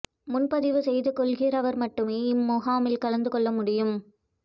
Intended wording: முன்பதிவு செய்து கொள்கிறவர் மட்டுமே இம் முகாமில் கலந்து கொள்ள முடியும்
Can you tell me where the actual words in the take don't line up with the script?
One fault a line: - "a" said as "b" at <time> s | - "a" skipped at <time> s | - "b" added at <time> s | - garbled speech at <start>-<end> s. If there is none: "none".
none